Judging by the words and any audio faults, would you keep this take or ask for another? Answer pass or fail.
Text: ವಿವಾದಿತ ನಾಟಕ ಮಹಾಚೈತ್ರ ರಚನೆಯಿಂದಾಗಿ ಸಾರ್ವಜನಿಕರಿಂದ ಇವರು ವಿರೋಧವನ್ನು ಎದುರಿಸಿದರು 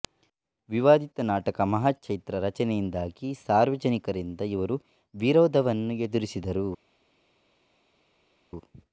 pass